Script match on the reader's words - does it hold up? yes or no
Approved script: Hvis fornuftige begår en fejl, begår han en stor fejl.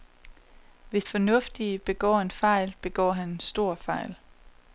yes